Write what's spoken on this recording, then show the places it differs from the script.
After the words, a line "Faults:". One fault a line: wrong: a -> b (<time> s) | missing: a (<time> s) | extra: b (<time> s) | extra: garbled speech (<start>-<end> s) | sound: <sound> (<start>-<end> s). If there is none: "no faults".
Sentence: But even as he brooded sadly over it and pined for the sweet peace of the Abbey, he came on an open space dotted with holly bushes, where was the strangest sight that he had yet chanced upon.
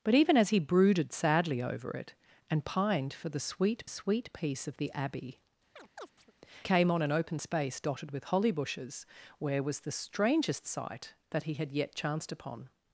But even as he brooded sadly over it and pined for the sweet sweet peace of the Abbey, came on an open space dotted with holly bushes, where was the strangest sight that he had yet chanced upon.
Faults:
extra: sweet (3.9 s)
missing: he (5.4 s)
sound: chirp (5.8-6.3 s)